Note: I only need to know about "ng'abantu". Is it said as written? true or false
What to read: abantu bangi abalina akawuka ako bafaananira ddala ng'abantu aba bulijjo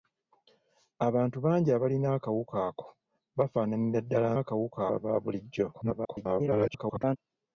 false